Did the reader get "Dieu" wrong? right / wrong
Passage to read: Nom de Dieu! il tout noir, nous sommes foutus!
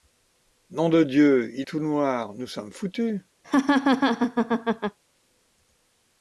right